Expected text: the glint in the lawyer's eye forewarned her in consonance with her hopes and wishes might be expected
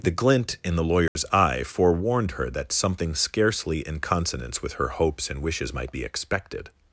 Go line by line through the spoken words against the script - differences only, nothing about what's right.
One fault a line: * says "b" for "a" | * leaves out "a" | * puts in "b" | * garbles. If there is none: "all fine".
* puts in "that something scarcely"